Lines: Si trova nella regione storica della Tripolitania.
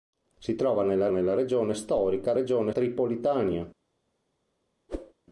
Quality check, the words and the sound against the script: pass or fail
fail